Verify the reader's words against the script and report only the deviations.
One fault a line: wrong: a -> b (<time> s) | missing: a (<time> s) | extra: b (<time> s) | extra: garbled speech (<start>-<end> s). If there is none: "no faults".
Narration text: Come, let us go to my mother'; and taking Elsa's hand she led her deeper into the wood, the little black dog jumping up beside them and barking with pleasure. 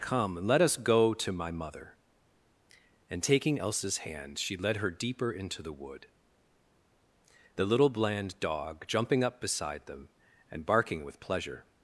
wrong: black -> bland (7.9 s)